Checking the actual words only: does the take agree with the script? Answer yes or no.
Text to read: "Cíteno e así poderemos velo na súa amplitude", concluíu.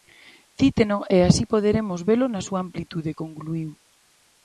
yes